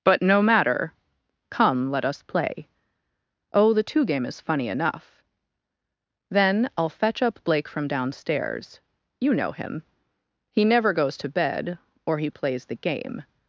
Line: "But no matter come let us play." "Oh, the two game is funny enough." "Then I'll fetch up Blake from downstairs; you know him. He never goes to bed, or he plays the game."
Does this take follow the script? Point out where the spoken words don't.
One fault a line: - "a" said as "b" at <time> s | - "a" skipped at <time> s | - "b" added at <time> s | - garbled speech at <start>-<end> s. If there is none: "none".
none